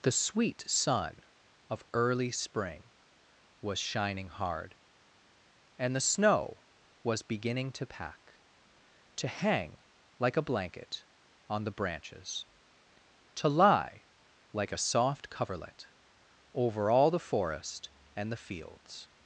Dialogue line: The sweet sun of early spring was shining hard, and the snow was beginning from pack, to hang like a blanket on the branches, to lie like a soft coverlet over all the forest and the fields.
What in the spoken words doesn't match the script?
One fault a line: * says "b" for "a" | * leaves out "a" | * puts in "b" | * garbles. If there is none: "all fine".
* says "to" for "from"